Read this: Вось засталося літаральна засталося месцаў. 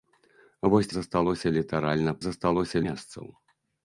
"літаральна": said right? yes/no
yes